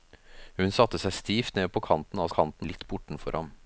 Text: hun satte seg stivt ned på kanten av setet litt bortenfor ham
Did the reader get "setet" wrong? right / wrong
wrong